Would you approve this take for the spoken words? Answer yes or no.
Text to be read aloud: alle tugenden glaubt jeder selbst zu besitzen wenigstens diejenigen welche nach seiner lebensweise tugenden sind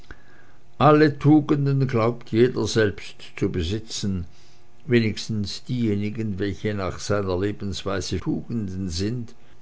yes